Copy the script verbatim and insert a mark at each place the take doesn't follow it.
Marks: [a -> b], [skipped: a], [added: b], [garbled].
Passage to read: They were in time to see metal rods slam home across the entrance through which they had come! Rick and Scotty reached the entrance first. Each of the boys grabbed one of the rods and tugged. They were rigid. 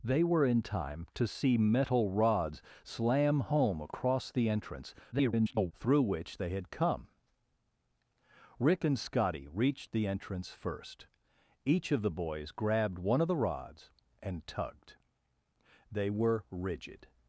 They were in time to see metal rods slam home across the entrance [garbled] through which they had come! Rick and Scotty reached the entrance first. Each of the boys grabbed one of the rods and tugged. They were rigid.